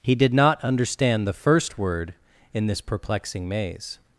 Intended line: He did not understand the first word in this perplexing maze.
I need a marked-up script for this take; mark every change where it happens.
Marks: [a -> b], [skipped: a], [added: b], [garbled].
He did not understand the first word in this perplexing maze.